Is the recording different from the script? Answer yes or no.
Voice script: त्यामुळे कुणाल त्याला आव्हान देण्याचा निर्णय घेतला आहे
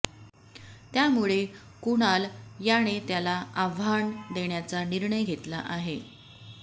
yes